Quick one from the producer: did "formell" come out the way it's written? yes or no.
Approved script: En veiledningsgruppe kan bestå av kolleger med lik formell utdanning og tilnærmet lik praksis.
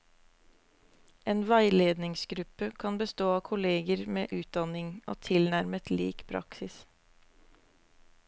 no